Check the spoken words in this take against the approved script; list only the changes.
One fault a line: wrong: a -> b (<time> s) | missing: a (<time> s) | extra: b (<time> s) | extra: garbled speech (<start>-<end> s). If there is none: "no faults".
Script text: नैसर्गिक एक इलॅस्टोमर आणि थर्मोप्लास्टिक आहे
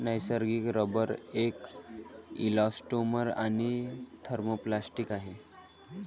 extra: रबर (0.8 s)